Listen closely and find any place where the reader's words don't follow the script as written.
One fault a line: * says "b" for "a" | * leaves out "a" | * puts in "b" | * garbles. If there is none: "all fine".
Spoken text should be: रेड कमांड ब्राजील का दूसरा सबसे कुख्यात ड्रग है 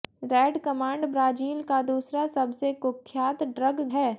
all fine